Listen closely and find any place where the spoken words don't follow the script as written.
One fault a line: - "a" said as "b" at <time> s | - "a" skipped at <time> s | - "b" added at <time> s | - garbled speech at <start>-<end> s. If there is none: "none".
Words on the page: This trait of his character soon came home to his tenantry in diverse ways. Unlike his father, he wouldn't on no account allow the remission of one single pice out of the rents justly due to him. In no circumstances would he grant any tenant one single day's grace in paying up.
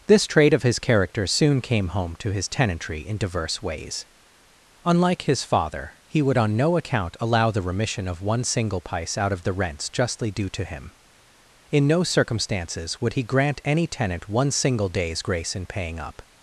- "wouldn't" said as "would" at 6.2 s